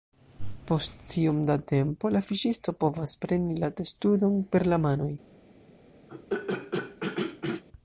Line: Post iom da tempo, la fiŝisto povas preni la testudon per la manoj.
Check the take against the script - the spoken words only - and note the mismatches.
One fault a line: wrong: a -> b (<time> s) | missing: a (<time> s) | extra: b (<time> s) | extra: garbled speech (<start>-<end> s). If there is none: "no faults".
no faults